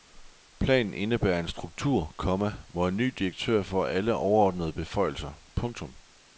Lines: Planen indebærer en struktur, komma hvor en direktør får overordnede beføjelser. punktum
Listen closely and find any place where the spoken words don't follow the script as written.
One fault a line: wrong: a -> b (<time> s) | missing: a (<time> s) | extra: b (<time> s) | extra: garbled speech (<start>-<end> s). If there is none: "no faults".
extra: ny (3.0 s)
extra: alle (3.9 s)